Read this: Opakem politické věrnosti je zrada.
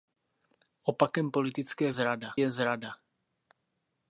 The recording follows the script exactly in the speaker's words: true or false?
false